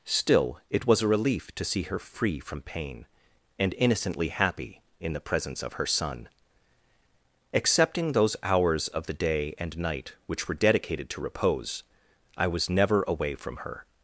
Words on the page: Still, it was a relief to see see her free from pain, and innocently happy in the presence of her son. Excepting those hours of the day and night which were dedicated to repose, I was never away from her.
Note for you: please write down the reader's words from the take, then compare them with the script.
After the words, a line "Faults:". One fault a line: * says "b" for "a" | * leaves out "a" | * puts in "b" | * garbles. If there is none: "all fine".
Still, it was a relief to see her free from pain, and innocently happy in the presence of her son. Excepting those hours of the day and night which were dedicated to repose, I was never away from her.
Faults:
* leaves out "see"